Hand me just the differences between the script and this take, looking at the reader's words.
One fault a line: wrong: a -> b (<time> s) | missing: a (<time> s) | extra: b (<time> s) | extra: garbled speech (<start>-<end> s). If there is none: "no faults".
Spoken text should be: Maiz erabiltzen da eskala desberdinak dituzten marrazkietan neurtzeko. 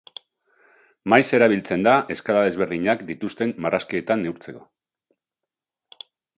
no faults